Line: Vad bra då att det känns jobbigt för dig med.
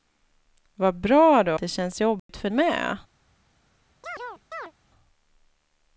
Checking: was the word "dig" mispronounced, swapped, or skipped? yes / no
yes